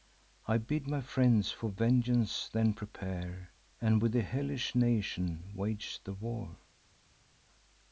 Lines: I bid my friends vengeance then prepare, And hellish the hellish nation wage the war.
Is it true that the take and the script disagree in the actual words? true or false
true